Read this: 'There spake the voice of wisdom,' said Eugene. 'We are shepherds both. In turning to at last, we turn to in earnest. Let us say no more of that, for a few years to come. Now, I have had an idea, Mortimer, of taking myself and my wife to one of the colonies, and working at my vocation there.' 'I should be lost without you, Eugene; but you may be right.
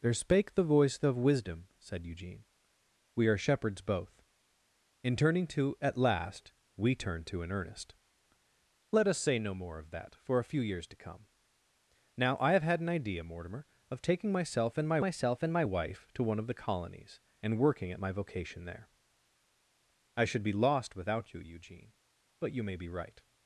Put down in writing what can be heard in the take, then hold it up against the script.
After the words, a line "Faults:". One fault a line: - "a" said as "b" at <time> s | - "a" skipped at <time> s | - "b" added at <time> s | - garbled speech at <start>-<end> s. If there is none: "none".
'There spake the voice of wisdom,' said Eugene. 'We are shepherds both. In turning to at last, we turn to in earnest. Let us say no more of that, for a few years to come. Now, I have had an idea, Mortimer, of taking myself and my myself and my wife to one of the colonies, and working at my vocation there.' 'I should be lost without you, Eugene; but you may be right.
Faults:
- "myself and my" added at 15.0 s